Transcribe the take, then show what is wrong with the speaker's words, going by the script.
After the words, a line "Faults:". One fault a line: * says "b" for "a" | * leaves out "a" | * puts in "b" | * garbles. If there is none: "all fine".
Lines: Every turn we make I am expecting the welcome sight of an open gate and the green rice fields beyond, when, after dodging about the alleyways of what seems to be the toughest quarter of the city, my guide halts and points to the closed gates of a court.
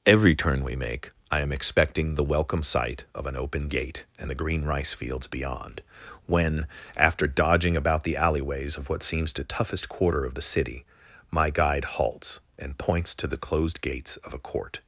Every turn we make I am expecting the welcome sight of an open gate and the green rice fields beyond, when, after dodging about the alleyways of what seems to the toughest quarter of the city, my guide halts and points to the closed gates of a court.
Faults:
* leaves out "be"